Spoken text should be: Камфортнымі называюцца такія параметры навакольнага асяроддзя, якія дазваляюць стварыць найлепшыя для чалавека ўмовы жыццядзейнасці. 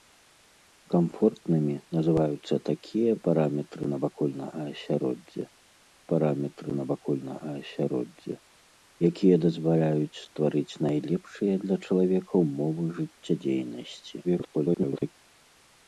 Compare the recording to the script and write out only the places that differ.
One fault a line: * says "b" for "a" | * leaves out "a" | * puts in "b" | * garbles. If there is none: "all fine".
* puts in "параметры навакольнага асяроддзя"
* garbles